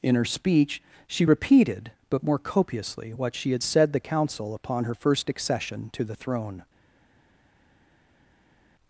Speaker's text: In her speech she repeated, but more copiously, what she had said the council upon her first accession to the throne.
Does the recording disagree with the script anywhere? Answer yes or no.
no